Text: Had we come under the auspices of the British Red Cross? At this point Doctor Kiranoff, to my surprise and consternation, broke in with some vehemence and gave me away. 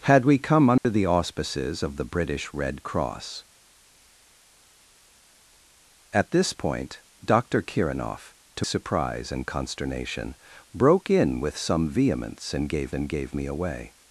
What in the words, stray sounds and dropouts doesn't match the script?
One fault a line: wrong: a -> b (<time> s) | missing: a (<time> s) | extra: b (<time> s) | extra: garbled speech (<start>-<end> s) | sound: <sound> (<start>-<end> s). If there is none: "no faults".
sound: dropout (0.8-0.8 s)
missing: my (8.7 s)
extra: and gave (12.9 s)